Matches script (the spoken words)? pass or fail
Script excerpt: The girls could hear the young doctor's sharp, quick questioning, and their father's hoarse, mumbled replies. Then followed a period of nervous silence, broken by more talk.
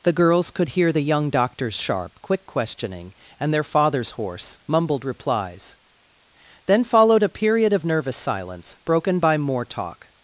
pass